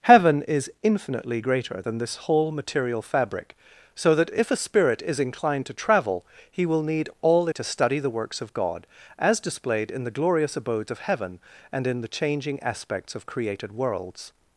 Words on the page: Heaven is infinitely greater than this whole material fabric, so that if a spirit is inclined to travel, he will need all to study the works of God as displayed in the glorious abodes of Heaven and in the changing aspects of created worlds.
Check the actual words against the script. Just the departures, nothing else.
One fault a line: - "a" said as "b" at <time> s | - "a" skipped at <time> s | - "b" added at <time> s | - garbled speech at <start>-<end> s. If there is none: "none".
none